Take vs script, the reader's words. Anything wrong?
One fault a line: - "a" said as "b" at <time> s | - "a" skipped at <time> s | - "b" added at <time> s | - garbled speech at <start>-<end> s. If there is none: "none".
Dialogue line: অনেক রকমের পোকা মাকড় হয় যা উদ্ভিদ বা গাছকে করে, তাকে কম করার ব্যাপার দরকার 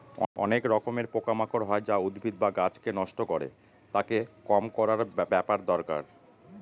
- "নষ্ট" added at 2.9 s